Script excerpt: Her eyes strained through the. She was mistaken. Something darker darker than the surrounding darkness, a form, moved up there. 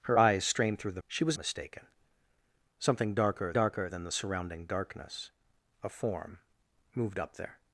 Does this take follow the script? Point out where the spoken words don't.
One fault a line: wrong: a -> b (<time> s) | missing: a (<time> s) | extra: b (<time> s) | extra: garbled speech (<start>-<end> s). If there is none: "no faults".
no faults